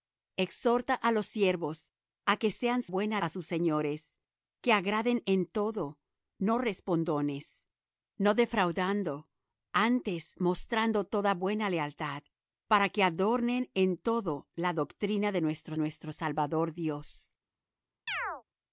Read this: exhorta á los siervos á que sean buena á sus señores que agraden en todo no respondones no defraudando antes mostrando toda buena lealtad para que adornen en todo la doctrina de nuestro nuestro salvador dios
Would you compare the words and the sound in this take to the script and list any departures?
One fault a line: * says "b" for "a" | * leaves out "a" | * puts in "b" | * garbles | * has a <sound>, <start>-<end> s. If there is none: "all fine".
* has a chirp, 18.1-18.4 s